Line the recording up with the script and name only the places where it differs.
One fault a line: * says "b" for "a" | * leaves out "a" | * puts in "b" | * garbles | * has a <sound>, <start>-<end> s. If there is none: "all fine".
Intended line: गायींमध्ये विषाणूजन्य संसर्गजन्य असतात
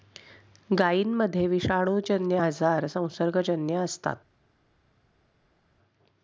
* puts in "आजार"